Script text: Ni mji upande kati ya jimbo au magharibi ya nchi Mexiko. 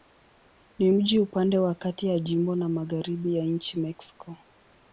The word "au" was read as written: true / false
false